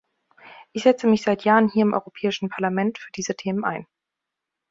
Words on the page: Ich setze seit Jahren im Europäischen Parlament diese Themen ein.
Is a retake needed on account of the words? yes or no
yes